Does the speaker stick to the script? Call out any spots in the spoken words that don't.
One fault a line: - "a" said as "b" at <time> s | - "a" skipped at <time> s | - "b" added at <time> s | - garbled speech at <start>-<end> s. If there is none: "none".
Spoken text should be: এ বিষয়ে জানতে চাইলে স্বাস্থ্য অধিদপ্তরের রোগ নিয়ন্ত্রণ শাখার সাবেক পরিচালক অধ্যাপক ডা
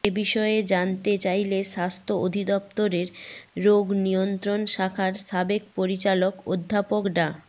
none